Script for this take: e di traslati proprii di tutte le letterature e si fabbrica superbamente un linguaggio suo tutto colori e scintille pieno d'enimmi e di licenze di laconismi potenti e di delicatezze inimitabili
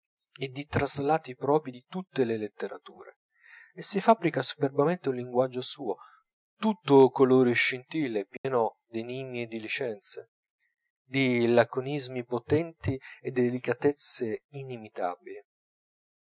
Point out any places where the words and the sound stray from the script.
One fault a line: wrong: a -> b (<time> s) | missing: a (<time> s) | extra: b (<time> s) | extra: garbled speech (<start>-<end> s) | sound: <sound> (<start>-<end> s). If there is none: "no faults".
sound: dropout (8.4-8.4 s)